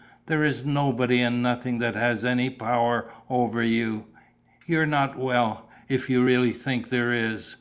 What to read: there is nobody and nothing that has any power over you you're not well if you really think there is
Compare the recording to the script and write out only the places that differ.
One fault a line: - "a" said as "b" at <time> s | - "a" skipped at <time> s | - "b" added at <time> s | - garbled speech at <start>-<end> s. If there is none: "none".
none